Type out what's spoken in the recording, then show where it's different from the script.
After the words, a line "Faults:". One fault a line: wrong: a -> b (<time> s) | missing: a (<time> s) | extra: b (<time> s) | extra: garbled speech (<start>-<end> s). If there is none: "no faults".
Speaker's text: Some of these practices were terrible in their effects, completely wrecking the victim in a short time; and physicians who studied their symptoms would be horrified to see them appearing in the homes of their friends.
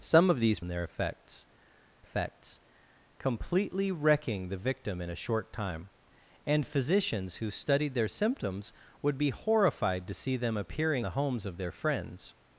Some of these in their effects effects, completely wrecking the victim in a short time; and physicians who studied their symptoms would be horrified to see them appearing the homes of their friends.
Faults:
missing: practices were terrible (0.6 s)
extra: effects (2.0 s)
missing: in (11.1 s)